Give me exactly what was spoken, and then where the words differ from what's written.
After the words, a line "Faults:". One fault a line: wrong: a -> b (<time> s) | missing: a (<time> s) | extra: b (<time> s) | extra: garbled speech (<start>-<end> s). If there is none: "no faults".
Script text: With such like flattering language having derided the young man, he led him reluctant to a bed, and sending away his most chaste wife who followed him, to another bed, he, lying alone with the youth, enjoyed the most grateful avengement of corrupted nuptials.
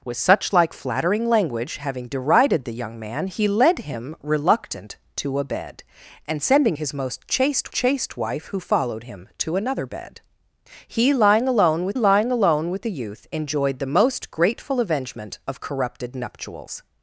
With such like flattering language having derided the young man, he led him reluctant to a bed, and sending his most chaste chaste wife who followed him, to another bed, he, lying alone with lying alone with the youth, enjoyed the most grateful avengement of corrupted nuptials.
Faults:
missing: away (6.8 s)
extra: chaste (7.7 s)
extra: lying alone with (11.9 s)